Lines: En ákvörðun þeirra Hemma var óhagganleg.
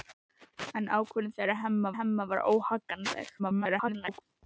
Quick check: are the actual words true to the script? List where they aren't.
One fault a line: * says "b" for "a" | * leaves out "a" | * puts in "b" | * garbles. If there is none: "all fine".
* puts in "Hemma"
* garbles